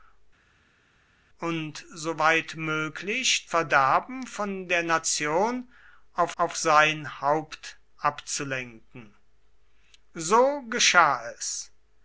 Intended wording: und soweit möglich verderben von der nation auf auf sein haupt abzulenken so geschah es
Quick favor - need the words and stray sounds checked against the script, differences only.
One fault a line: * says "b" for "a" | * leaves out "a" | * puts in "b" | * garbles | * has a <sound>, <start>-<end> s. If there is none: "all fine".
all fine